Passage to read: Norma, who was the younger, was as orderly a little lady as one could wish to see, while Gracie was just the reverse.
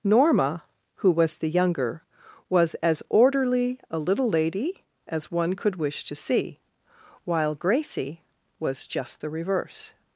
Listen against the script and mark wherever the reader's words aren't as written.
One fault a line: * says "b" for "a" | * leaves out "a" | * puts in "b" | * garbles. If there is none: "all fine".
all fine